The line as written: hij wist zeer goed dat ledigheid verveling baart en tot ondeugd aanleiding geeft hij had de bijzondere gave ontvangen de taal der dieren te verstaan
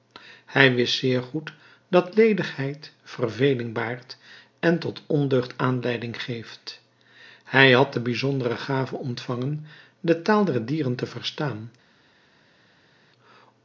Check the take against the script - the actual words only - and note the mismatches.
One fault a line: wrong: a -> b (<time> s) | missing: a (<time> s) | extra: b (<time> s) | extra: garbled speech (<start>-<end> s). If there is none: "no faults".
no faults